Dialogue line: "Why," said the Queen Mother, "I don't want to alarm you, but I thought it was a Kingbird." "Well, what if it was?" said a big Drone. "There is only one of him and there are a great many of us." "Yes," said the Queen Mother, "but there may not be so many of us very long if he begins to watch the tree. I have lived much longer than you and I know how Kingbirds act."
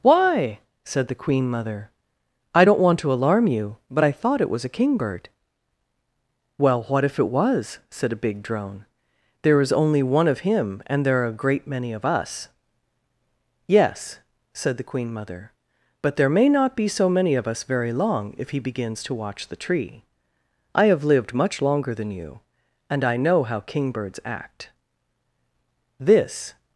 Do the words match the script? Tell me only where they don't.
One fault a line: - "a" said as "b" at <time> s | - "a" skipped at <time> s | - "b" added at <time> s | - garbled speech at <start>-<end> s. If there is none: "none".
- "This" added at 26.0 s